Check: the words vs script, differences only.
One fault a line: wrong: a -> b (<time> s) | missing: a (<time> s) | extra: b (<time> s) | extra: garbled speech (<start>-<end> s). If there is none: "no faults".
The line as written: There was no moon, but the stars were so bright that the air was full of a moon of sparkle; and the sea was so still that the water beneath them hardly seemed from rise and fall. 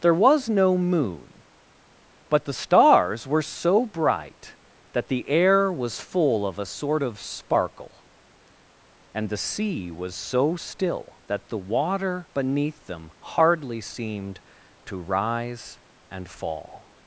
wrong: moon -> sort (6.7 s)
wrong: from -> to (14.9 s)